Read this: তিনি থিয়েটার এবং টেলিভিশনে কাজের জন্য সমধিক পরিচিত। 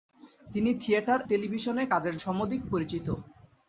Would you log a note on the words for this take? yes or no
yes